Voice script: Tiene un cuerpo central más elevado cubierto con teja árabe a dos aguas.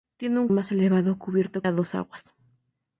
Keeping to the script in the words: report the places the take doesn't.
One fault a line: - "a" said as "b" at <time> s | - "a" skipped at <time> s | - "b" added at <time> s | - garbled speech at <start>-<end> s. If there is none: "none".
- "cuerpo central" skipped at 0.5 s
- "con teja árabe" skipped at 1.6 s